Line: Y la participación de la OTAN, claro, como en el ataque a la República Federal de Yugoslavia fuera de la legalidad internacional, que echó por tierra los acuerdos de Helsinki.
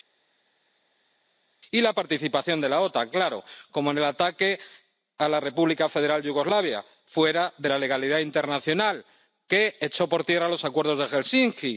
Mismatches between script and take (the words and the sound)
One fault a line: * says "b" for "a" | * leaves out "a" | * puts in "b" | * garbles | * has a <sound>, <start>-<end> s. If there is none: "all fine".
all fine